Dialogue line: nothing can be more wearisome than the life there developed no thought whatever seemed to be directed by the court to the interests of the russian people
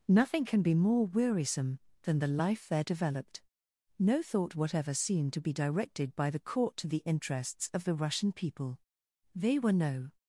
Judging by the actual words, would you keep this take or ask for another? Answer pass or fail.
fail